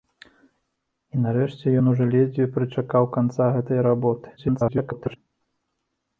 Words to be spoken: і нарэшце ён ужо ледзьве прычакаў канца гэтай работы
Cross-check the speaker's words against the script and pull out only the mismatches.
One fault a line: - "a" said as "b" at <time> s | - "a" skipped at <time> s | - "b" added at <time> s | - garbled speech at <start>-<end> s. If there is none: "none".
- garbled speech at 4.4-5.2 s